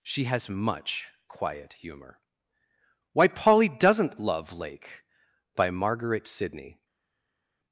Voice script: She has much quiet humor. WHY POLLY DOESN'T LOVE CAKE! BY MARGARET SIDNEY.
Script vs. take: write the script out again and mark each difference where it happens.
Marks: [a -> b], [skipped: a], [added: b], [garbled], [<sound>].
She has much quiet humor. WHY POLLY DOESN'T LOVE [CAKE! -> Lake] BY MARGARET SIDNEY.